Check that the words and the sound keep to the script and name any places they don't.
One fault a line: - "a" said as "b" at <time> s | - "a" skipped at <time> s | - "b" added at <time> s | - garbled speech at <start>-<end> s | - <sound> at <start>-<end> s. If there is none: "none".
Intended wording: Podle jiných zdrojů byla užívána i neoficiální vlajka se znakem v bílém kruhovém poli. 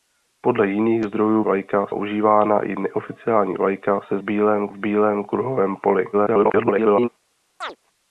- "byla" said as "vlajka" at 1.4 s
- "znakem" said as "bílém" at 4.2 s
- garbled speech at 6.1-7.1 s
- chirp at 7.6-7.8 s